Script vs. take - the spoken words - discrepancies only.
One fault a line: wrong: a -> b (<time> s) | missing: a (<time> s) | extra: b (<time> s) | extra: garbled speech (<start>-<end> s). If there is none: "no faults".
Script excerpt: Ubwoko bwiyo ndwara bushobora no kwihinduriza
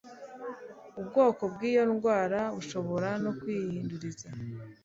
no faults